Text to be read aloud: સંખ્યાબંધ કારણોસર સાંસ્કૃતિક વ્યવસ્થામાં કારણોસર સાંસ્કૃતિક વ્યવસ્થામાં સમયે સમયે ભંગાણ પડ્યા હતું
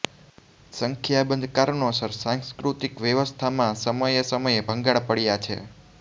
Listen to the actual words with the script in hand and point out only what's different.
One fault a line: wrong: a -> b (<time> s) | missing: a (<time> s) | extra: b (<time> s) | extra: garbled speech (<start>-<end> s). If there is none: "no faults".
missing: કારણોસર સાંસ્કૃતિક વ્યવસ્થામાં (3.8 s)
wrong: હતું -> છે (5.4 s)